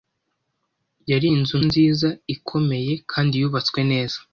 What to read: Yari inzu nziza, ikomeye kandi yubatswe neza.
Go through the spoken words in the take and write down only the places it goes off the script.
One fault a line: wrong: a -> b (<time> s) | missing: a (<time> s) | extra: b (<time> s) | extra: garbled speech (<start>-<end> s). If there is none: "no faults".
no faults